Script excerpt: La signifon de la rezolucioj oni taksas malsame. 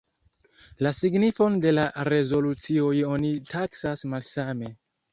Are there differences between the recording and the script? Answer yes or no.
no